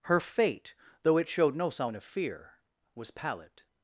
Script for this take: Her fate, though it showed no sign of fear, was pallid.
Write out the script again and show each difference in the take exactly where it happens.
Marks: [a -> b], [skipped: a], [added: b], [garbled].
Her fate, though it showed no sign of fear, was pallid.